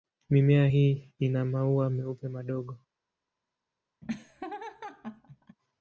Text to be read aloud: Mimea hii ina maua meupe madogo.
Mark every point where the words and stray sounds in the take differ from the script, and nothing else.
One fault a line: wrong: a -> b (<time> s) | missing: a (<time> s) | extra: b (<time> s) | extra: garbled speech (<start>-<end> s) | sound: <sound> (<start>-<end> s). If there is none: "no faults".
sound: laugh (4.0-5.6 s)